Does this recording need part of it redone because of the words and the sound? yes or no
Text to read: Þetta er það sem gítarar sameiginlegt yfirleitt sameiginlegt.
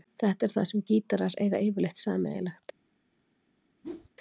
yes